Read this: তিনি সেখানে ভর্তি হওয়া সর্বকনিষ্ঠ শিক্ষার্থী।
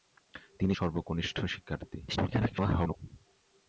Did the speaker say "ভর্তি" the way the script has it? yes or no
no